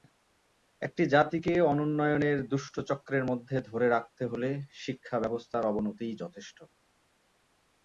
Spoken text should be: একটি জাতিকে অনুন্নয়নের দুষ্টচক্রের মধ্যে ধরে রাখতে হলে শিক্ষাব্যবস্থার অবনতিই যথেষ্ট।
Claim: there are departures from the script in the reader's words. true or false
false